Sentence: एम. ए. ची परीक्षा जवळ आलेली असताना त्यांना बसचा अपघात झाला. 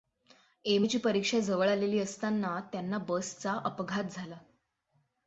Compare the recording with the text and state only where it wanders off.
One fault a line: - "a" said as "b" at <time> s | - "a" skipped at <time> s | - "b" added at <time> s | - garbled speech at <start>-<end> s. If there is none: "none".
none